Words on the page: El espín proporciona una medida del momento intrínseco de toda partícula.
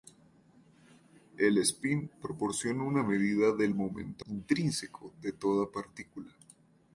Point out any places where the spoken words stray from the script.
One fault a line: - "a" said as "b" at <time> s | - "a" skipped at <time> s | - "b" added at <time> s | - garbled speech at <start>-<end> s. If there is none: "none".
none